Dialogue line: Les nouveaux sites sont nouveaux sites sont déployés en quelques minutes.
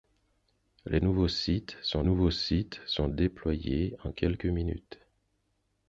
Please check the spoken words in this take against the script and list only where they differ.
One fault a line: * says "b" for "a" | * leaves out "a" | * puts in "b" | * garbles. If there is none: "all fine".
all fine